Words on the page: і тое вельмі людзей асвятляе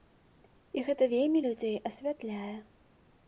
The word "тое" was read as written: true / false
false